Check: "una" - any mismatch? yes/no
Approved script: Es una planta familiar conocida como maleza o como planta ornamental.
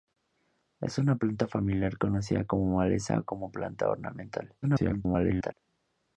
no